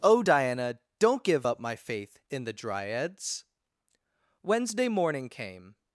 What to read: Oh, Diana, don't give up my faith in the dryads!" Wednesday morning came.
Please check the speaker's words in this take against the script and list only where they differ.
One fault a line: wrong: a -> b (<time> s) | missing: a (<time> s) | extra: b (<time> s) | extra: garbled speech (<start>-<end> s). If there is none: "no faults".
no faults